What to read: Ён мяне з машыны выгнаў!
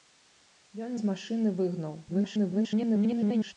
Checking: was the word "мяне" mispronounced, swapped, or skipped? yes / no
yes